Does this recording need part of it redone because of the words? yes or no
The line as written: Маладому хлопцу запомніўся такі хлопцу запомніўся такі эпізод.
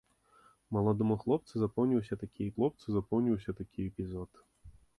no